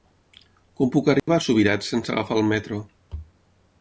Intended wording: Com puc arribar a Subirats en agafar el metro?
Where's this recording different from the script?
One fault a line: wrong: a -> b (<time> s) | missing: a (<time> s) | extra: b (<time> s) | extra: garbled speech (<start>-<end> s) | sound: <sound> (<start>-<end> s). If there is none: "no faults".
sound: dropout (1.2-1.3 s)
wrong: en -> sense (1.9 s)